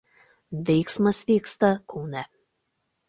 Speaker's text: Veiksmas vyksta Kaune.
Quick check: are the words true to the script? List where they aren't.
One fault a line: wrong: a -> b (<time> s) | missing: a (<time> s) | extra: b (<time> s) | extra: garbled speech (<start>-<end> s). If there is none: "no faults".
no faults